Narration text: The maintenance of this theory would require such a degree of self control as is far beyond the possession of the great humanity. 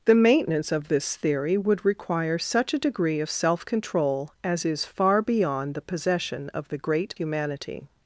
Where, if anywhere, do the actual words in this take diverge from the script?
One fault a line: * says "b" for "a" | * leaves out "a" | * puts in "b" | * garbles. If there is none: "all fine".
all fine